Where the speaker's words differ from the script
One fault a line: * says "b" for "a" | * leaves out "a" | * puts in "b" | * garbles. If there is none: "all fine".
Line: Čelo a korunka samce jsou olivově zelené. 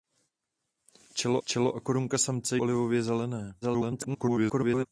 * puts in "čelo"
* leaves out "jsou"
* garbles